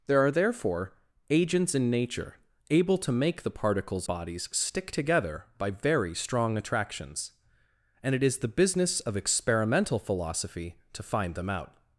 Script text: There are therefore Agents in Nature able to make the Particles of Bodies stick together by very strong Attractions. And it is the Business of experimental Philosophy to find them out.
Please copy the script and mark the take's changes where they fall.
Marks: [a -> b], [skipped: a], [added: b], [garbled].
There are therefore Agents in Nature able to make the Particles [skipped: of] Bodies stick together by very strong Attractions. And it is the Business of experimental Philosophy to find them out.